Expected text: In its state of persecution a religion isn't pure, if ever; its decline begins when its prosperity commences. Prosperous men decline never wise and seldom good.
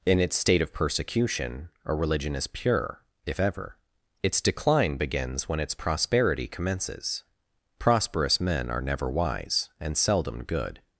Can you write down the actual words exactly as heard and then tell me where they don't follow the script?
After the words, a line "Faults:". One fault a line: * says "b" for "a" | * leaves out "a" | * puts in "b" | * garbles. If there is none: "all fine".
In its state of persecution a religion is pure, if ever; its decline begins when its prosperity commences. Prosperous men are never wise and seldom good.
Faults:
* says "is" for "isn't"
* says "are" for "decline"